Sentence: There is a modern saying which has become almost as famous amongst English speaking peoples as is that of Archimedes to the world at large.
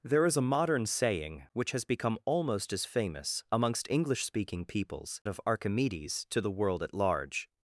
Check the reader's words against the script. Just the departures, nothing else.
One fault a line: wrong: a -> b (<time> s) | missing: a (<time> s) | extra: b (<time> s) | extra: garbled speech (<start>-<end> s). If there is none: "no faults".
missing: as is that (5.2 s)